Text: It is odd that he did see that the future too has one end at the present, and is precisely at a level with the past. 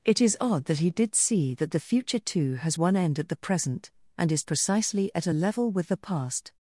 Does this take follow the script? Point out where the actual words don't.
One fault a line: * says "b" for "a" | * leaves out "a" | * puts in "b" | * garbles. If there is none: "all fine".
all fine